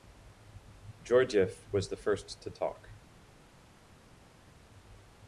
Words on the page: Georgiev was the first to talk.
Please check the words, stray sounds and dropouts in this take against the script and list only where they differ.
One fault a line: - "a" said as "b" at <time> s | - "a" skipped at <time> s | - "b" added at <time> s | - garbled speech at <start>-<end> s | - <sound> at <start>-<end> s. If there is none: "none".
none